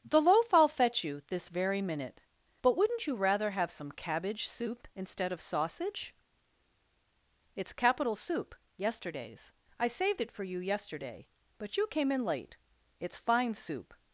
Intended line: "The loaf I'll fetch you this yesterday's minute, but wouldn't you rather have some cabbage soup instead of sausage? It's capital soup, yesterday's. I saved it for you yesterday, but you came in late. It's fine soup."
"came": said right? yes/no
yes